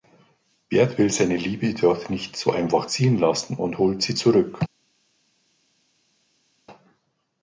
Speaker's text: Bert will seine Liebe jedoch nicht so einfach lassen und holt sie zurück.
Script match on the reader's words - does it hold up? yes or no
no